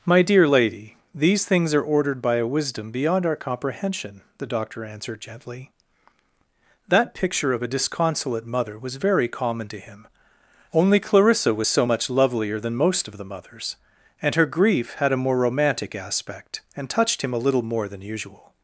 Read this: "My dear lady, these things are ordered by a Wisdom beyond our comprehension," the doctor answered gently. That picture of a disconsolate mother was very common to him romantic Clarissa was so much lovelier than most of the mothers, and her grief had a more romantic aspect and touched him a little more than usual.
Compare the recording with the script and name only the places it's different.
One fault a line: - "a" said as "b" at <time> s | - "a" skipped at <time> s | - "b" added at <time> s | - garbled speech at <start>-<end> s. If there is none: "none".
- "romantic" said as "only" at 10.7 s